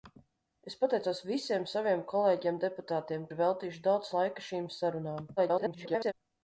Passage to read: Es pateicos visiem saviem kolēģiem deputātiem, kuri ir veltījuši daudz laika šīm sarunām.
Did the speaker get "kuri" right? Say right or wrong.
wrong